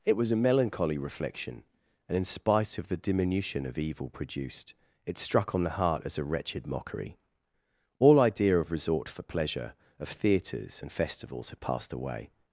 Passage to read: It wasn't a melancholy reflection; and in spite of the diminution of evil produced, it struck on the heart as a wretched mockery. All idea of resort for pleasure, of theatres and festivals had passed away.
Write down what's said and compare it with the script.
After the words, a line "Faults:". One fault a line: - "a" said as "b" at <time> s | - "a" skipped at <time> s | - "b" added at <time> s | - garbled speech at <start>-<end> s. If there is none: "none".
It was a melancholy reflection; and in spite of the diminution of evil produced, it struck on the heart as a wretched mockery. All idea of resort for pleasure, of theatres and festivals had passed away.
Faults:
- "wasn't" said as "was" at 0.2 s